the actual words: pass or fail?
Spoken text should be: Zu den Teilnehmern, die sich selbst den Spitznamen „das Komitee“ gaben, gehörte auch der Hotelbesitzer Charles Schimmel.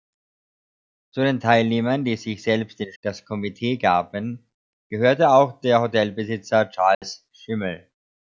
fail